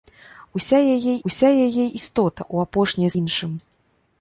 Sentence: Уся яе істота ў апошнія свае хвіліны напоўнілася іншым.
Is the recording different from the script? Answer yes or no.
yes